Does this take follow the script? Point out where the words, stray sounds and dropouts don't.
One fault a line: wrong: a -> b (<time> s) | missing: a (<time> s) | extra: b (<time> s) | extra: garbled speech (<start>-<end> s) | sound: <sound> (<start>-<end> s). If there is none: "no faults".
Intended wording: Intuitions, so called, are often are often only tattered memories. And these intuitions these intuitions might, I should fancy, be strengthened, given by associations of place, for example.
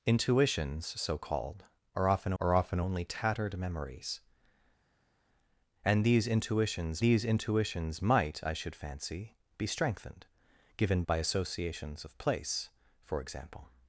no faults